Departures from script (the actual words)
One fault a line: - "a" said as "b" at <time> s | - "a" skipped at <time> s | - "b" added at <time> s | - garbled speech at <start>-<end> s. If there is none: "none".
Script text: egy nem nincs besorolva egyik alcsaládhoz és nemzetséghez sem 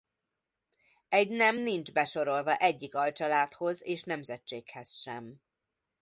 none